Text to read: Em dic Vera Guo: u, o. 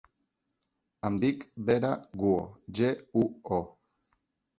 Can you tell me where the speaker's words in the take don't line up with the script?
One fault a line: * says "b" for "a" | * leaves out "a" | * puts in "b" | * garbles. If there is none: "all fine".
* puts in "ge"